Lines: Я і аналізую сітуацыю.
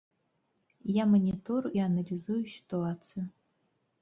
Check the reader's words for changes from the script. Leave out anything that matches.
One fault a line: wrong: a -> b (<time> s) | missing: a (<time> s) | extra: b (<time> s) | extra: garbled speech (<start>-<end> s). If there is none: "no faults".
extra: манітору (1.1 s)